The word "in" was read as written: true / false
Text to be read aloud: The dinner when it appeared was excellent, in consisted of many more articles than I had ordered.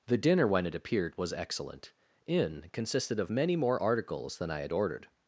true